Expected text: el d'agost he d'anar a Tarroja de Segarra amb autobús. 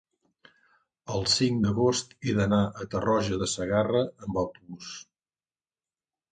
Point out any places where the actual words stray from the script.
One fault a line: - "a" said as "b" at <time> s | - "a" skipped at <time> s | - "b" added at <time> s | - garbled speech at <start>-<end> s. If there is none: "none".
- "cinc" added at 1.3 s